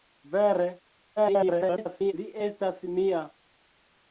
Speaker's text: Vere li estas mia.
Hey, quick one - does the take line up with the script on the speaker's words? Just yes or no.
no